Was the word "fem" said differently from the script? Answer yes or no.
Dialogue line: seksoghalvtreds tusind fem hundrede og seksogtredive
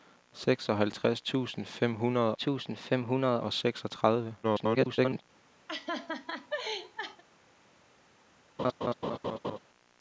no